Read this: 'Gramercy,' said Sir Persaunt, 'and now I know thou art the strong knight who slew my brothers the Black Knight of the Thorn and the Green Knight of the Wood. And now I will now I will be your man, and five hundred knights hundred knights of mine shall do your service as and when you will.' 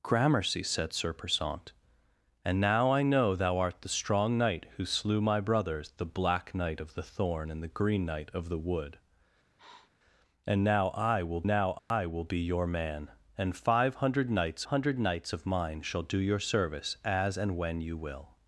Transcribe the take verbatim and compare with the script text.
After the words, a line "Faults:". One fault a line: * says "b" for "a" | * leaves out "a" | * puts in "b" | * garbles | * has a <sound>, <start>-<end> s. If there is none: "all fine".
'Gramercy,' said Sir Persaunt, 'and now I know thou art the strong knight who slew my brothers the Black Knight of the Thorn and the Green Knight of the Wood. And now I will now I will be your man, and five hundred knights hundred knights of mine shall do your service as and when you will.'
Faults:
* has a sniff, 9.6-9.9 s
* has a dropout, 11.8-11.9 s